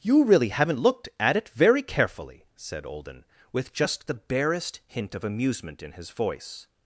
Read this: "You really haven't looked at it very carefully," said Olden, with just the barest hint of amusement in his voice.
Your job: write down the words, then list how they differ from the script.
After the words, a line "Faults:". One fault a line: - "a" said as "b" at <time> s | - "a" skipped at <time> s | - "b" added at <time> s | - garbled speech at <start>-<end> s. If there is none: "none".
"You really haven't looked at it very carefully," said Olden, with just the barest hint of amusement in his voice.
Faults:
none